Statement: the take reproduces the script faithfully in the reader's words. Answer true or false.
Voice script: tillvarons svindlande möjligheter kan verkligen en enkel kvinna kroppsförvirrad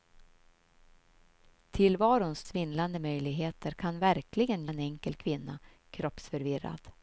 true